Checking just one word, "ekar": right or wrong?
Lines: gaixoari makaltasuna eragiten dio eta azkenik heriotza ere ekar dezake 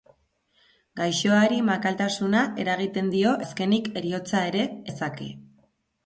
wrong